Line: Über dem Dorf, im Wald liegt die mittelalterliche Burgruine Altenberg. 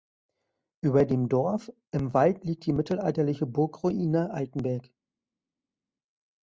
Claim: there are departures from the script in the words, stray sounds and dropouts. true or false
false